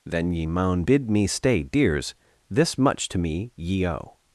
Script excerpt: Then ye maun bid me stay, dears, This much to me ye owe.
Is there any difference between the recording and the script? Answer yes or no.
no